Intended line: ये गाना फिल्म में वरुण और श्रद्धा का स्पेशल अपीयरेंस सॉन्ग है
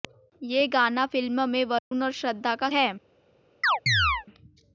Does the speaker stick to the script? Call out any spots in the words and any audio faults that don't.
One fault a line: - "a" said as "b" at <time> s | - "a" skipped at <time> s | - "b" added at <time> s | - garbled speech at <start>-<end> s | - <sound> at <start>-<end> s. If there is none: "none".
- dropout at 1.8-1.9 s
- "स्पेशल अपीयरेंस सॉन्ग" skipped at 2.7 s
- chirp at 3.6-4.3 s